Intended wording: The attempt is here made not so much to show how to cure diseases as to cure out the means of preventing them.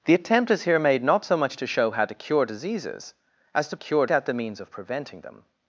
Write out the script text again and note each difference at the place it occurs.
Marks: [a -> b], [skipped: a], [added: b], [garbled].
The attempt is here made not so much to show how to cure diseases as to cure out the means of preventing them.